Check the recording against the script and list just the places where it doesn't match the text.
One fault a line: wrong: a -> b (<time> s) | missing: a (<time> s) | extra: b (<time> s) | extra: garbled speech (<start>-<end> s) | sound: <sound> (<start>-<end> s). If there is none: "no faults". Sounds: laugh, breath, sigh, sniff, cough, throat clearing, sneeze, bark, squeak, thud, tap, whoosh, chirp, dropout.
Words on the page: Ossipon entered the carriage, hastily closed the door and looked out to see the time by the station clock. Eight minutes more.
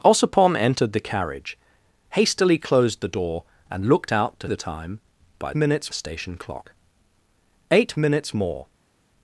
missing: see (4.5 s)
wrong: the -> minutes (5.5 s)